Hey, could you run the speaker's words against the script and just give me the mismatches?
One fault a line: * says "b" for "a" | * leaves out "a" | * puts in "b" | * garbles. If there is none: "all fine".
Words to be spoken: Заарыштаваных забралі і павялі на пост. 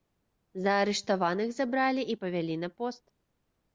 all fine